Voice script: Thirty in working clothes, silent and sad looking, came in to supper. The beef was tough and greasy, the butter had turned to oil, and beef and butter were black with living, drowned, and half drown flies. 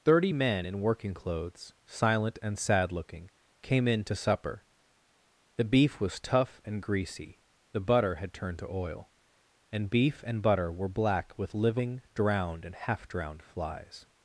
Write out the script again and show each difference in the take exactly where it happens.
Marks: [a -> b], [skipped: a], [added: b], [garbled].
Thirty [added: men] in working clothes, silent and sad looking, came in to supper. The beef was tough and greasy, the butter had turned to oil, and beef and butter were black with living, drowned, and half [drown -> drowned] flies.